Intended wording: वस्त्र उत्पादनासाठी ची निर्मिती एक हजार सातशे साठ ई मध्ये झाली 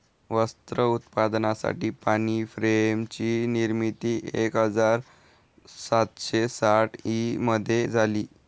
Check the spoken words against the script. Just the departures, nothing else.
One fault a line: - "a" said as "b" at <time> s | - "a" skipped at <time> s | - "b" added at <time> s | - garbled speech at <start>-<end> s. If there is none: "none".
- "पाणी फ्रेम" added at 2.0 s